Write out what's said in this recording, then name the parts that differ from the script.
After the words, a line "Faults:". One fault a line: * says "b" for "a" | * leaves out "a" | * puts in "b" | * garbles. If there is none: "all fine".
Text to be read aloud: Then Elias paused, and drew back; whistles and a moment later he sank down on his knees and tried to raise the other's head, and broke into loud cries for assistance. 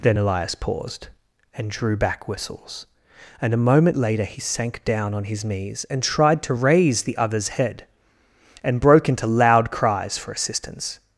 Then Elias paused, and drew back; whistles and a moment later he sank down on his knees and tried to raise the other's head, and broke into loud cries for assistance.
Faults:
all fine